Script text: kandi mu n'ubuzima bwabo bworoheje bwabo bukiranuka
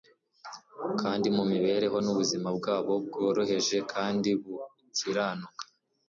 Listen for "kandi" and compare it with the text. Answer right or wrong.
right